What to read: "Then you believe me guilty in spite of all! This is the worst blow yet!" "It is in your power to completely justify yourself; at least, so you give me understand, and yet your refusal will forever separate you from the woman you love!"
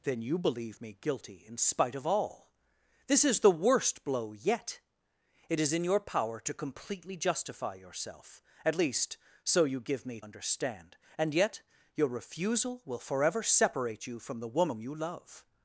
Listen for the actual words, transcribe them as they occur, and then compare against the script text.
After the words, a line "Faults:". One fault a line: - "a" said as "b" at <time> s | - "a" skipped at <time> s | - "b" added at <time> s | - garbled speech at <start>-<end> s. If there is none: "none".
"Then you believe me guilty in spite of all! This is the worst blow yet!" "It is in your power to completely justify yourself; at least, so you give me understand, and yet your refusal will forever separate you from the woman you love!"
Faults:
none